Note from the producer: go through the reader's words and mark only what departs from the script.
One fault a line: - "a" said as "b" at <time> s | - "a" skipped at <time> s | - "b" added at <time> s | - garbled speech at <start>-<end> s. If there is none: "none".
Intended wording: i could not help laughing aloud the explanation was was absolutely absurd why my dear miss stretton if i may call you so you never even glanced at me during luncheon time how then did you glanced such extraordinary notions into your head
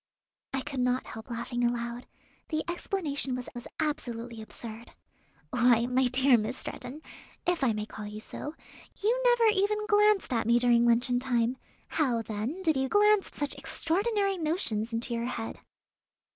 none